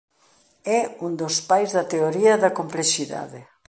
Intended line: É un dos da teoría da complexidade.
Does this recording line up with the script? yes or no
no